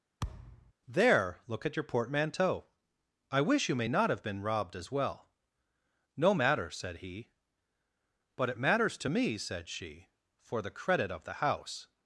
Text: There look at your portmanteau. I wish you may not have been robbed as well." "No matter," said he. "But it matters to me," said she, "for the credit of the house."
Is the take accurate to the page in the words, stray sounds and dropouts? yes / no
no